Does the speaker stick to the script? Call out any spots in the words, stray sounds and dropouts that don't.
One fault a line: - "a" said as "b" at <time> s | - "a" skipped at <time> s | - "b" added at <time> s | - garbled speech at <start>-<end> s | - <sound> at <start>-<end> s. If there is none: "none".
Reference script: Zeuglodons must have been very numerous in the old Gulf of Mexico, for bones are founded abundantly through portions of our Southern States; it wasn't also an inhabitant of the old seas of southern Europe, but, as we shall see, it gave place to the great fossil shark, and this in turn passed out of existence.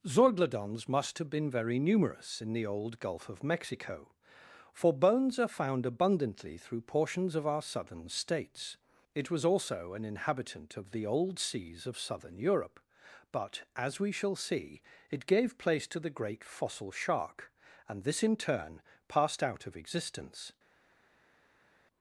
- "founded" said as "found" at 5.6 s
- "wasn't" said as "was" at 9.3 s